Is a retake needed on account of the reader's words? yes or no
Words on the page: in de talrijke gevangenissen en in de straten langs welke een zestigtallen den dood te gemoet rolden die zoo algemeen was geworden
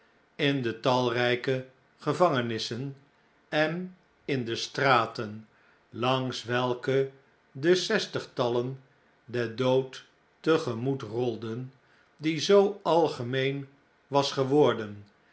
yes